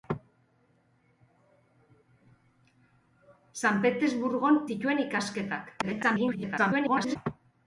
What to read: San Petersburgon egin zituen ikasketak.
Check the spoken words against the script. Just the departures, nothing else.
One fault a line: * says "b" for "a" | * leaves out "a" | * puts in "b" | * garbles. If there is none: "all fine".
* leaves out "egin"
* garbles